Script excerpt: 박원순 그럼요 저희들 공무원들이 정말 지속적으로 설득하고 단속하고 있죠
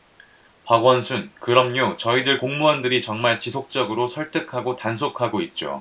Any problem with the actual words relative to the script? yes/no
no